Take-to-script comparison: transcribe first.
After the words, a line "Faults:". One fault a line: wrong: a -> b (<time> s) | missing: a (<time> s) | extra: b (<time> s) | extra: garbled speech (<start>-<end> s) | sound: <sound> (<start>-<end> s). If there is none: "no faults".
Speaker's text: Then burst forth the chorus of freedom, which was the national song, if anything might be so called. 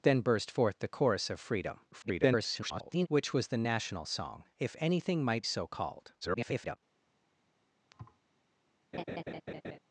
Then burst forth the chorus of freedom, [garbled] which was the national song, if anything might so called. [garbled]
Faults:
extra: garbled speech (1.9-3.1 s)
missing: be (5.5 s)
extra: garbled speech (6.2-6.8 s)
sound: thud (7.9-8.2 s)
sound: laugh (8.9-9.8 s)